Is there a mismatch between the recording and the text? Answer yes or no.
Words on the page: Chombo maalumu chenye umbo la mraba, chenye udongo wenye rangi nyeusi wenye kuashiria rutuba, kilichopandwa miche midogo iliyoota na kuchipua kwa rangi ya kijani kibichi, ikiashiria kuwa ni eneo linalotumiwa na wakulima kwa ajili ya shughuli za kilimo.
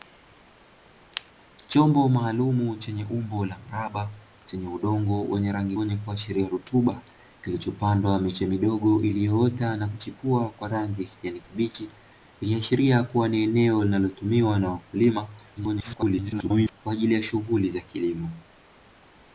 yes